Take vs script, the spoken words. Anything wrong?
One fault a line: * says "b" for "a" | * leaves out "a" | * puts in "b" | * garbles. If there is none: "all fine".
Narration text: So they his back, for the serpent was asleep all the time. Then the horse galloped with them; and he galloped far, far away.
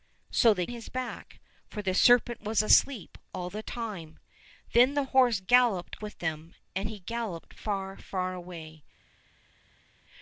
all fine